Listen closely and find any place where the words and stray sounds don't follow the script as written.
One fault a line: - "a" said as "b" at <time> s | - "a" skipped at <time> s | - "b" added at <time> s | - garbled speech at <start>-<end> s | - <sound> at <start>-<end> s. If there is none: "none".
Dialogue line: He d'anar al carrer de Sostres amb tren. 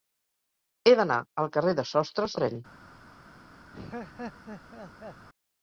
- "amb" skipped at 2.4 s
- laugh at 3.7-5.3 s